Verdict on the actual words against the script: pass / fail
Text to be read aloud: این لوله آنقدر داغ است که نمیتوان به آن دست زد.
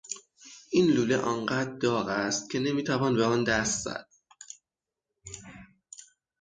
pass